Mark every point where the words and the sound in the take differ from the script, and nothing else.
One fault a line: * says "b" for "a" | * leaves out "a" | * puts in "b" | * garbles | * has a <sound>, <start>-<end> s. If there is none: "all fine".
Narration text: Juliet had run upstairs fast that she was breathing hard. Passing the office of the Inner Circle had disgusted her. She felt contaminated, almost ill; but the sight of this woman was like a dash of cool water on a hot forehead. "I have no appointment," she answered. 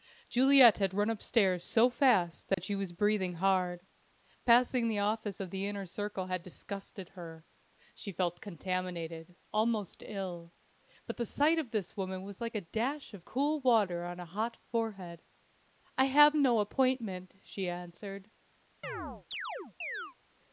* puts in "so"
* has a dropout, 2.5-2.6 s
* has a chirp, 18.8-20.2 s